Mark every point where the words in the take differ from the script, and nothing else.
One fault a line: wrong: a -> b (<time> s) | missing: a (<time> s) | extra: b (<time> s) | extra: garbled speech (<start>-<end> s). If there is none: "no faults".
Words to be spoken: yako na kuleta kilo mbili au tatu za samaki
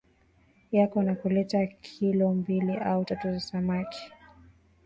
no faults